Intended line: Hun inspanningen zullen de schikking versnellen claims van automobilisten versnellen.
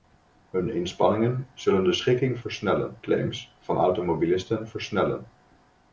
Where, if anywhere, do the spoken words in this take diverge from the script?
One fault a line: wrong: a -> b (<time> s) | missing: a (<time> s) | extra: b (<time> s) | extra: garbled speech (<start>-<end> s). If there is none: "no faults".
no faults